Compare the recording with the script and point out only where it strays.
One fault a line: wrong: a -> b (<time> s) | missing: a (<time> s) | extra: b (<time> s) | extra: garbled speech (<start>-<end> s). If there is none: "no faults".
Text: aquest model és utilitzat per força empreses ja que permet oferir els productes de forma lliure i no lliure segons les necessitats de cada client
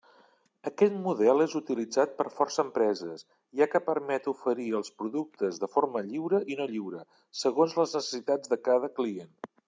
no faults